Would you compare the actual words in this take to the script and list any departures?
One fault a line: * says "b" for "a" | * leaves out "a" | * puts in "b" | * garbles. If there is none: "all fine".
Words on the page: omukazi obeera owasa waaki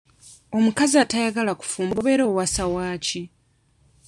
* puts in "atayagala kufumba"